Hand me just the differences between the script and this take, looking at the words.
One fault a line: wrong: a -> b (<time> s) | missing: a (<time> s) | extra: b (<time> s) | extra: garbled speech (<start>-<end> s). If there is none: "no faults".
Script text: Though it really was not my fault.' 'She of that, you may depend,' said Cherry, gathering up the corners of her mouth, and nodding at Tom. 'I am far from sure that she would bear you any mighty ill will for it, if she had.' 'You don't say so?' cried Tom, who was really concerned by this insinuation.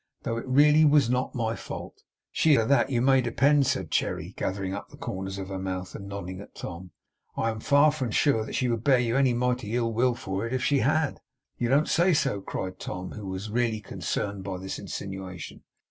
no faults